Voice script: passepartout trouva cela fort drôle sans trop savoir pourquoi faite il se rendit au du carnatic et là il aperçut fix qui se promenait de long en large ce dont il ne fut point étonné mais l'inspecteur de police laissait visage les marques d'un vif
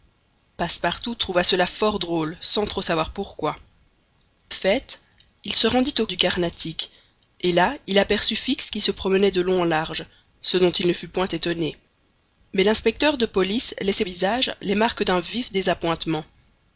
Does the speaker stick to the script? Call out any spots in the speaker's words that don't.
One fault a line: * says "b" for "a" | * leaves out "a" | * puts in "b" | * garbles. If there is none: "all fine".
all fine